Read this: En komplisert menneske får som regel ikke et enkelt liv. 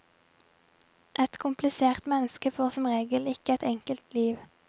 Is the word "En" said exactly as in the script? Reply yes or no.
no